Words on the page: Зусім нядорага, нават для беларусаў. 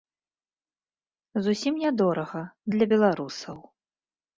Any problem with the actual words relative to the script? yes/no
yes